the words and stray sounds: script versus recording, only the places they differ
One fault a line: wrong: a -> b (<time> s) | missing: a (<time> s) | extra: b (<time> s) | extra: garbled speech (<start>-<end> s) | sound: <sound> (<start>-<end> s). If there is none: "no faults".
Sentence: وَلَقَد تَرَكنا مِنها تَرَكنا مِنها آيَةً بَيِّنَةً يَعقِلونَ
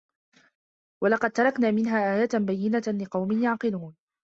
missing: تَرَكنا مِنها (2.1 s)
extra: لِقَومٍ (3.0 s)